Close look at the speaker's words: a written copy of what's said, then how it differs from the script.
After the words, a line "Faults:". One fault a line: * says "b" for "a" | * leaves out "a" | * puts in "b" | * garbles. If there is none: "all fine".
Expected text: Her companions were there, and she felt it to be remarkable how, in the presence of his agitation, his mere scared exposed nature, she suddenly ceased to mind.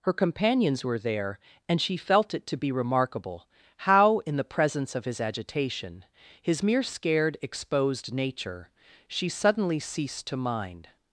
Her companions were there, and she felt it to be remarkable how, in the presence of his agitation, his mere scared exposed nature, she suddenly ceased to mind.
Faults:
all fine